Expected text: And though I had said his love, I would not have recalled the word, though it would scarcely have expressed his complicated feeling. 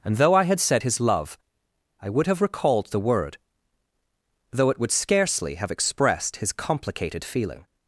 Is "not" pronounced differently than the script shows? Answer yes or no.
yes